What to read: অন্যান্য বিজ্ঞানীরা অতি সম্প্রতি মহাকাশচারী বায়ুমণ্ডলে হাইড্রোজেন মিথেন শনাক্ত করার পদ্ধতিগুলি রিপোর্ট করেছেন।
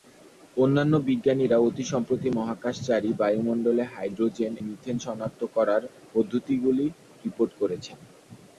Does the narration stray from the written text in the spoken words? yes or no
no